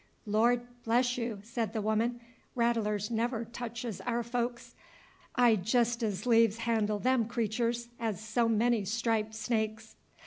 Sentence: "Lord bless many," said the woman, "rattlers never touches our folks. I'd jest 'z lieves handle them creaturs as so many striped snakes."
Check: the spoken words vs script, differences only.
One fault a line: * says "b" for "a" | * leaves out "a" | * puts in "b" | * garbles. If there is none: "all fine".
* says "you" for "many"